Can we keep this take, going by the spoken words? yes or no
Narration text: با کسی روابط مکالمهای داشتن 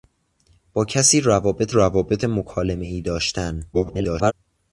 no